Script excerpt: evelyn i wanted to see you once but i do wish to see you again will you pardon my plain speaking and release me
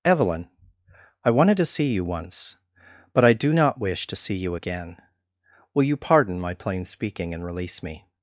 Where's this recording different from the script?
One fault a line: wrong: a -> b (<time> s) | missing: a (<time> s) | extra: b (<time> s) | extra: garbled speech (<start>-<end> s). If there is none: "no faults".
extra: not (3.5 s)